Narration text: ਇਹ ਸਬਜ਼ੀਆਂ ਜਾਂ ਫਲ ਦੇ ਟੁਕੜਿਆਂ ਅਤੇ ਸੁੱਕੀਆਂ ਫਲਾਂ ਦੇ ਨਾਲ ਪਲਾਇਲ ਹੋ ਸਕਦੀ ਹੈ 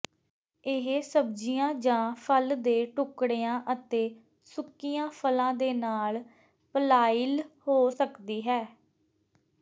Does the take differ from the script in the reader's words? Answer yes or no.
no